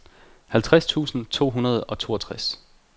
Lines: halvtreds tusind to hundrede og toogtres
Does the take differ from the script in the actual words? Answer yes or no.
no